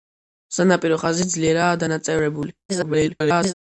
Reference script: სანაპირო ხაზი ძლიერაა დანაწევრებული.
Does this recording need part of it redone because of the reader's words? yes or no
yes